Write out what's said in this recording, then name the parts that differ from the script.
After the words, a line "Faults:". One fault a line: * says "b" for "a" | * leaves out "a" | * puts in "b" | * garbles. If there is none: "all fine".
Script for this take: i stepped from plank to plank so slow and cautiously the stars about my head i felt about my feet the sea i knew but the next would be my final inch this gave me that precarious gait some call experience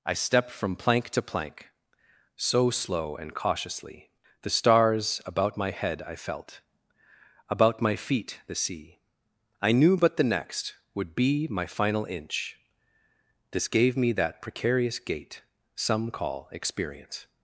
i stepped from plank to plank so slow and cautiously the stars about my head i felt about my feet the sea i knew but the next would be my final inch this gave me that precarious gait some call experience
Faults:
all fine